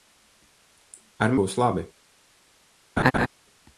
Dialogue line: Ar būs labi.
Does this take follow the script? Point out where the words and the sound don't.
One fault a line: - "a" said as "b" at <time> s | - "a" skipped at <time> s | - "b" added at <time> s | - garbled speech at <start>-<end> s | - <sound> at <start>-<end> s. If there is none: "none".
- laugh at 3.0-3.3 s